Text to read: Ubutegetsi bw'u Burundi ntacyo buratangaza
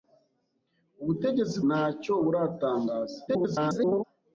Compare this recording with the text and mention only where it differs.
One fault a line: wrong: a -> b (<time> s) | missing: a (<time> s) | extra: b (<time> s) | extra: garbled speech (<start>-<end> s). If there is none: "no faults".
missing: bw'u Burundi (1.6 s)
extra: garbled speech (3.3-4.0 s)